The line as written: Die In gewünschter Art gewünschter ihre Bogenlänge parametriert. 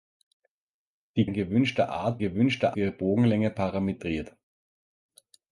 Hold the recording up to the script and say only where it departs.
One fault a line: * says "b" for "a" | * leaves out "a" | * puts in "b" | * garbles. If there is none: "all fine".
all fine